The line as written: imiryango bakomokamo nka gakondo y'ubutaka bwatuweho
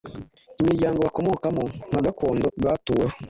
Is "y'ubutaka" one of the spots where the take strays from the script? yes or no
yes